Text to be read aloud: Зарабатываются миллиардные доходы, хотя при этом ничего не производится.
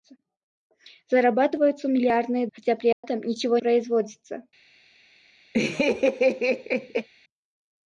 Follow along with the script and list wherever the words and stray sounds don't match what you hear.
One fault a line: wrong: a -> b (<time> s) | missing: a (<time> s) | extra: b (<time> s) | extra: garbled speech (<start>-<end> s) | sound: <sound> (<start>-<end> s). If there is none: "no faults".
missing: доходы (2.5 s)
sound: dropout (2.9-3.0 s)
missing: не (3.6 s)
sound: laugh (5.5-7.1 s)